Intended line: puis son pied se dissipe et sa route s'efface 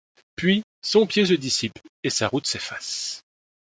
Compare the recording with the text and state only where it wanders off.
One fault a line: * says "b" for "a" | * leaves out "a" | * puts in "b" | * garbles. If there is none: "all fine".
all fine